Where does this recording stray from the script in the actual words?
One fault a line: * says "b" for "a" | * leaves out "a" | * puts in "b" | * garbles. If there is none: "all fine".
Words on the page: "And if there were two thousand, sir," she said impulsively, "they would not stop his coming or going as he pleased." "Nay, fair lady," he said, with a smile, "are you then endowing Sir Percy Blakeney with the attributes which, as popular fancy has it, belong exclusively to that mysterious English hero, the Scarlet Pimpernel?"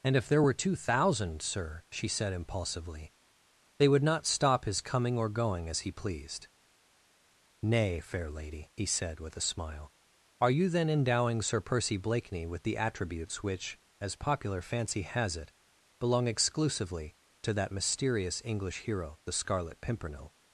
all fine